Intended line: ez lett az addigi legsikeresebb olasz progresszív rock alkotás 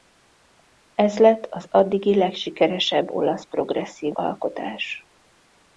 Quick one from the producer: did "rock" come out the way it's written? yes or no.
no